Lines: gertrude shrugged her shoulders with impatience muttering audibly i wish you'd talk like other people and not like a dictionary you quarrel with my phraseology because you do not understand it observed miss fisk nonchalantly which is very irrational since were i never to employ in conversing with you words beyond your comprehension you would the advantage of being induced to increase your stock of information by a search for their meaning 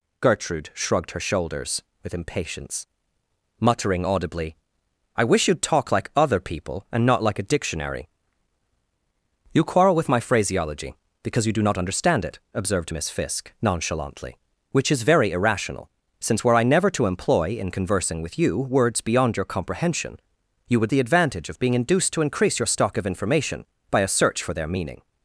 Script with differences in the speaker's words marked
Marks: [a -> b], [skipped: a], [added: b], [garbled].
gertrude shrugged her shoulders with impatience muttering audibly i wish you'd talk like other people and not like a dictionary you quarrel with my phraseology because you do not understand it observed miss fisk nonchalantly which is very irrational since were i never to employ in conversing with you words beyond your comprehension you would the advantage of being induced to increase your stock of information by a search for their meaning